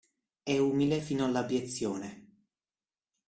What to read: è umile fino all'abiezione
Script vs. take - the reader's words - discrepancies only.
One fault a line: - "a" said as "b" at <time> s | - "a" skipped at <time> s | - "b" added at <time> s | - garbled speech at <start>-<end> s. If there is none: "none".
none